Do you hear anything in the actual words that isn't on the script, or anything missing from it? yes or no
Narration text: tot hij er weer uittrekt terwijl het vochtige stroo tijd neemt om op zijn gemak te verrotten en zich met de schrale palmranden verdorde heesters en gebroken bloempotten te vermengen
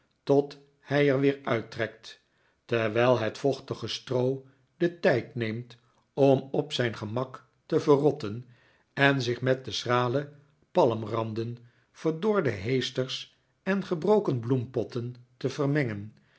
yes